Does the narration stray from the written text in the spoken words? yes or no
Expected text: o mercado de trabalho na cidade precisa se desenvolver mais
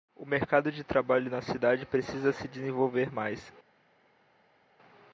no